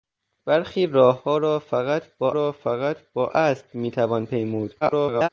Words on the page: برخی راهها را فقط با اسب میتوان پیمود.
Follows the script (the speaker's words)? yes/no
no